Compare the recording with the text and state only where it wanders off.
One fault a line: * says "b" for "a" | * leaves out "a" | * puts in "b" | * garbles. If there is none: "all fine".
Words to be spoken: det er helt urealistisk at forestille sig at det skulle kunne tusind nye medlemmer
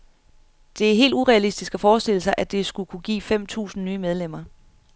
* puts in "give fem"